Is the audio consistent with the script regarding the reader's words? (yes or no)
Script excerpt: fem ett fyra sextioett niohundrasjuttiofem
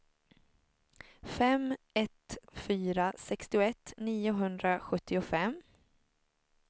yes